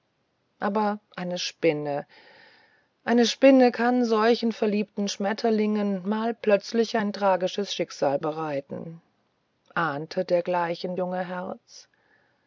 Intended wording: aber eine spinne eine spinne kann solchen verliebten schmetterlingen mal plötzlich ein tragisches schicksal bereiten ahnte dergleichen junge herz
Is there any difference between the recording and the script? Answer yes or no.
no